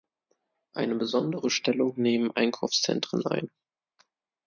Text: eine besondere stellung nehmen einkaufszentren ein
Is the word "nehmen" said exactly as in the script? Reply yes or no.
yes